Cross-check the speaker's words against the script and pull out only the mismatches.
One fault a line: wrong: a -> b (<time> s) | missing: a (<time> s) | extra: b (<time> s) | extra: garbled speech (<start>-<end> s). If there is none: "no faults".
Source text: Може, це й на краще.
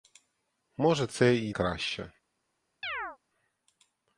missing: на (1.6 s)